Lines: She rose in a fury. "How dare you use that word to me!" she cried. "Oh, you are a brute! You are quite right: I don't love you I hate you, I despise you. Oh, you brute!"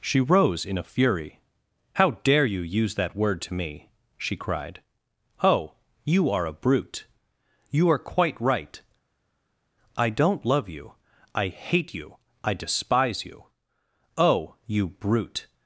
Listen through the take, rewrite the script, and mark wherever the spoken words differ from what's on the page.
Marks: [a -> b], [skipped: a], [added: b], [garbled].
She rose in a fury. "How dare you use that word to me!" she cried. "Oh, you are a brute! You are quite right: I don't love you I hate you, I despise you. Oh, you brute!"